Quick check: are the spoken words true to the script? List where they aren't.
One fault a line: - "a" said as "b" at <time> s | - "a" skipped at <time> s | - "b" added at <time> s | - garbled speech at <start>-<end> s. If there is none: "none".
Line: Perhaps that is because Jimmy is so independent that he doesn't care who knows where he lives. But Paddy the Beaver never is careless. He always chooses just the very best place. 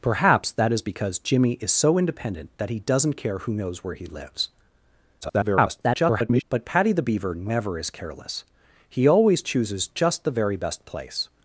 - garbled speech at 5.2-6.4 s